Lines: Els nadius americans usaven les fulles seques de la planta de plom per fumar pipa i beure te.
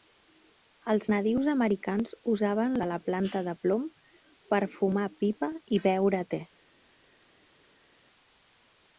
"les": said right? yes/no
no